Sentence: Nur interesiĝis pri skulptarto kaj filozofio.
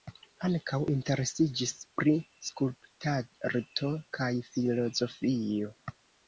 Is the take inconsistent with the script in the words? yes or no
yes